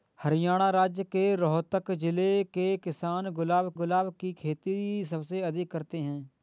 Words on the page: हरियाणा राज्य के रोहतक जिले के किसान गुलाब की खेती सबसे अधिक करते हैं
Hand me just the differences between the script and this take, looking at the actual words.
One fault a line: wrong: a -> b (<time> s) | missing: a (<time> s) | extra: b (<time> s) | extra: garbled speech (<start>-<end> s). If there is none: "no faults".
extra: गुलाब (3.7 s)